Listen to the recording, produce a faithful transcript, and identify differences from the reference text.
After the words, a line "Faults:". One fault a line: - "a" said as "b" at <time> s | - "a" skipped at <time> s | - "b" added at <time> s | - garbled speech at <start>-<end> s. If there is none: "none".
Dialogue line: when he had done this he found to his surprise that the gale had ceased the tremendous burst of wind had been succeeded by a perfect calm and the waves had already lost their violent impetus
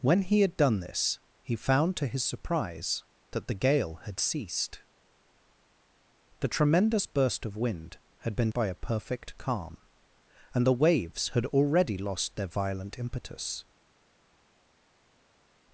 when he had done this he found to his surprise that the gale had ceased the tremendous burst of wind had been by a perfect calm and the waves had already lost their violent impetus
Faults:
- "succeeded" skipped at 8.5 s